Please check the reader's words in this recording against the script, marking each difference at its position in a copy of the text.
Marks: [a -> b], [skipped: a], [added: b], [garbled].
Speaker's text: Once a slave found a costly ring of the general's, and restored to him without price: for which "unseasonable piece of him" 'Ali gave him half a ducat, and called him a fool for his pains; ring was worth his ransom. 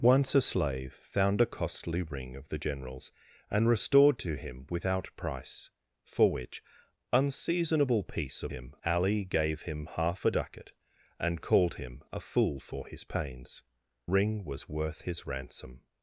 Once a slave found a costly ring of the general's, and restored to him without price: for which "unseasonable piece of him" 'Ali gave him half a ducat, and called him a fool for his pains; ring was worth his ransom.